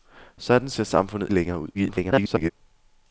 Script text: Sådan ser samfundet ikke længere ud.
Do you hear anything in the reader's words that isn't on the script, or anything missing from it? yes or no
yes